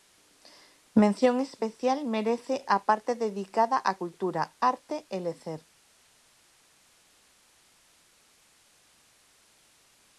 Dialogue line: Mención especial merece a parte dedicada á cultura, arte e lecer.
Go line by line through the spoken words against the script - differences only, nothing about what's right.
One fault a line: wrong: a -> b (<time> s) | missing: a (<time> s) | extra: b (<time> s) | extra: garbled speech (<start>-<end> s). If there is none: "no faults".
no faults